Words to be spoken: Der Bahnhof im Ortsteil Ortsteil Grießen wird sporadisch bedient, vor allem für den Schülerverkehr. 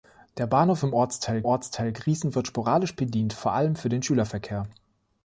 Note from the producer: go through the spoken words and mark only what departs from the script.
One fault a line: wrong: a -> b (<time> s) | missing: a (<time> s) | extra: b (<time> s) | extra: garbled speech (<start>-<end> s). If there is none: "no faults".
no faults